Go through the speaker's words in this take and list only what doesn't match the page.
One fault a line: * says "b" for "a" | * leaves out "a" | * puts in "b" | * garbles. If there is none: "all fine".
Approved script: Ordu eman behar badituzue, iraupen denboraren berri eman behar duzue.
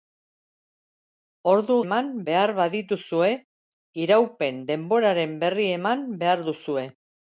all fine